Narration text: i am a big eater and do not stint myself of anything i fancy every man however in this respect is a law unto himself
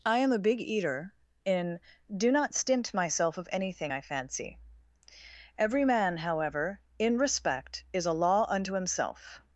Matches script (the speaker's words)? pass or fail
fail